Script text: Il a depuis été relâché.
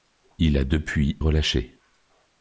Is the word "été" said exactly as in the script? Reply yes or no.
no